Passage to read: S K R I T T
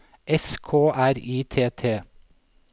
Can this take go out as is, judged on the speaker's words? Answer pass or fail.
pass